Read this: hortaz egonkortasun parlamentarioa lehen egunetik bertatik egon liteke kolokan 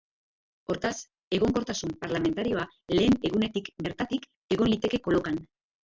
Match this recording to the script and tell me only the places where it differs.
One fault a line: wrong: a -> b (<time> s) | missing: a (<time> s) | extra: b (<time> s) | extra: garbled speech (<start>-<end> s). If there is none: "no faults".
no faults